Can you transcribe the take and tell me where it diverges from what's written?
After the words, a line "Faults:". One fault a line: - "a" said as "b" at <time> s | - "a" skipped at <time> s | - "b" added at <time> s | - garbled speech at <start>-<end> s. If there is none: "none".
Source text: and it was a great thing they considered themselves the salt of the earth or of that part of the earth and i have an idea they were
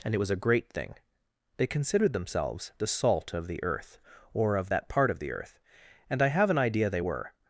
and it was a great thing they considered themselves the salt of the earth or of that part of the earth and i have an idea they were
Faults:
none